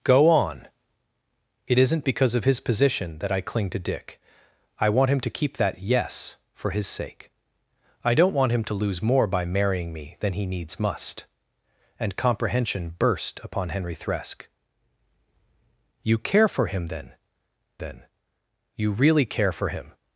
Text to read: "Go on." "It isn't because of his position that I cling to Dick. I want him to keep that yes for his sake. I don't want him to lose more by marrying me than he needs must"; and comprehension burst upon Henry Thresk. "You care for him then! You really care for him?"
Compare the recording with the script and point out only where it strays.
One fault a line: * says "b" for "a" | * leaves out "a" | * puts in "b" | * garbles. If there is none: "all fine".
* puts in "then"